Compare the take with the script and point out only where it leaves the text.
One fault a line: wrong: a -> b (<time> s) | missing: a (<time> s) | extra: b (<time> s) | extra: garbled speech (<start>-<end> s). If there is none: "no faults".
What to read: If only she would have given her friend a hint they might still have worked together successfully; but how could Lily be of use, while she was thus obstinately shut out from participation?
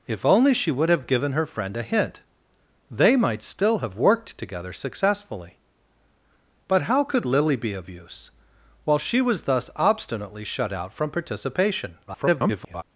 extra: garbled speech (12.1-12.8 s)